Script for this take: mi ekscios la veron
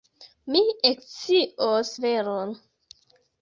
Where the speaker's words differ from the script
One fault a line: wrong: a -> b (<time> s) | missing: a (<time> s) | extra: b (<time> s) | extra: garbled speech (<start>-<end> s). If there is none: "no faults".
missing: la (1.9 s)